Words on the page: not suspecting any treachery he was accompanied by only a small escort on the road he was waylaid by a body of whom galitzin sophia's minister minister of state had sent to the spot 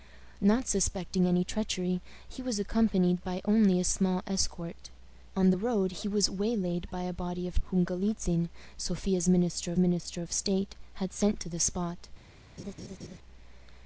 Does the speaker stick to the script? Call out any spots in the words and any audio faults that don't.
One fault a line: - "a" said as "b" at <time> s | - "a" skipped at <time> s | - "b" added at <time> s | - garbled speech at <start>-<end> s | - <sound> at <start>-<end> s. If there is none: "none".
- laugh at 12.6-13.2 s